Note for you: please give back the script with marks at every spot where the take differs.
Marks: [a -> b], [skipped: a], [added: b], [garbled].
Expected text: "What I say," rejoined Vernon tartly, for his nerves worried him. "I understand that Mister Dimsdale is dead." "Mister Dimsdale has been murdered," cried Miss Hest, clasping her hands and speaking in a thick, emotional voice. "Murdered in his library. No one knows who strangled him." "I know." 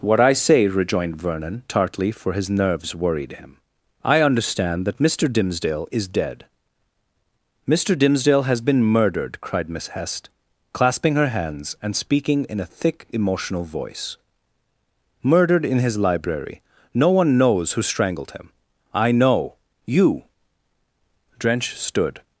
"What I say," rejoined Vernon tartly, for his nerves worried him. "I understand that Mister Dimsdale is dead." "Mister Dimsdale has been murdered," cried Miss Hest, clasping her hands and speaking in a thick, emotional voice. "Murdered in his library. No one knows who strangled him." "I know." [added: You Drench stood]